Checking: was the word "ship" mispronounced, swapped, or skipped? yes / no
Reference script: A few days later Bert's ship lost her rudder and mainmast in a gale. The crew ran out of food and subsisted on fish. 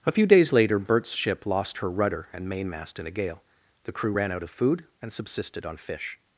no